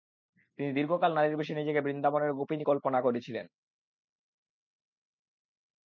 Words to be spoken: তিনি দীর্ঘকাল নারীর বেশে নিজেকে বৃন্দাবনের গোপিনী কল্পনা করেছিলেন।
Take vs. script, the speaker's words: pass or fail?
pass